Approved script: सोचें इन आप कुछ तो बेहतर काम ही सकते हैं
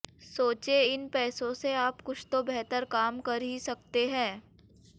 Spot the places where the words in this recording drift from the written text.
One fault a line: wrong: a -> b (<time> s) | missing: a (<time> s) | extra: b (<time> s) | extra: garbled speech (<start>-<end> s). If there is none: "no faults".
extra: पैसों से (1.1 s)
extra: कर (3.2 s)